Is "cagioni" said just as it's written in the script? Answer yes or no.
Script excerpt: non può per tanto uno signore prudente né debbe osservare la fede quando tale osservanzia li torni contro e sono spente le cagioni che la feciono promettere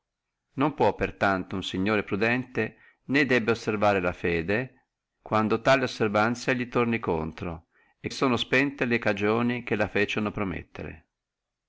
yes